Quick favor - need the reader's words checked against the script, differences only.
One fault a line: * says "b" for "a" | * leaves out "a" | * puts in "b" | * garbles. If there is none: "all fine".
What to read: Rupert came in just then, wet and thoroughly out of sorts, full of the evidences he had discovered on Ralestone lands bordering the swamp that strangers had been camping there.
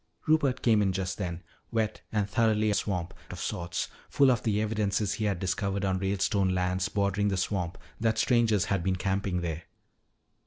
* says "swamp" for "out"